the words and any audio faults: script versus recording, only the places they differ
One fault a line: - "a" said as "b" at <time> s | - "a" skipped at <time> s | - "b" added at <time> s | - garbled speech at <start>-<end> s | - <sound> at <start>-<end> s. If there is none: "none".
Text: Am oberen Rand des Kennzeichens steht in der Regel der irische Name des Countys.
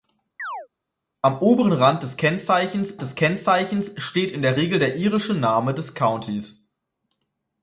- chirp at 0.4-0.7 s
- "des Kennzeichens" added at 3.0 s